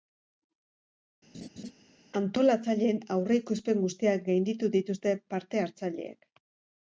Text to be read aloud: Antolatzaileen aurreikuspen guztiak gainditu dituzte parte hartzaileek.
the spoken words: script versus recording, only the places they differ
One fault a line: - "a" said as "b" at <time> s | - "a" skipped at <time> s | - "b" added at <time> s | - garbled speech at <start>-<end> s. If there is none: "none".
none